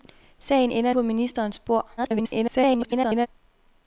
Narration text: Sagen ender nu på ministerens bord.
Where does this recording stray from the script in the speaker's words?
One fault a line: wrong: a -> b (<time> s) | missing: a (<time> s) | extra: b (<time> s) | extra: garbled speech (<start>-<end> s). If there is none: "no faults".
missing: nu (0.9 s)
extra: garbled speech (2.0-3.3 s)